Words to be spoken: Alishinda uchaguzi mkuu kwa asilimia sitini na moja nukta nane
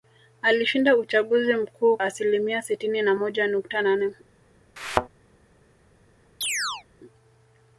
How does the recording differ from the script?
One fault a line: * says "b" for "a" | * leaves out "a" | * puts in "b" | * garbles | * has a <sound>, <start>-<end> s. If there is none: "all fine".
* leaves out "kwa"
* has a thud, 4.8-5.1 s
* has a chirp, 6.4-6.8 s